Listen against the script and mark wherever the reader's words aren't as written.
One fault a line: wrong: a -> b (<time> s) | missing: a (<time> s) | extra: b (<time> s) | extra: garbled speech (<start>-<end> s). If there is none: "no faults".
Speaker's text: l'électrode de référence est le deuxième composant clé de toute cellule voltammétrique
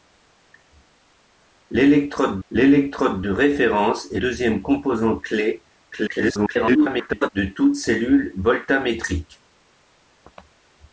extra: l'électrode (2.5 s)
missing: le (4.2 s)
extra: garbled speech (5.9-7.3 s)